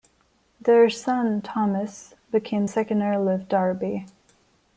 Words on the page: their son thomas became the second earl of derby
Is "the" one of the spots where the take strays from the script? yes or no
yes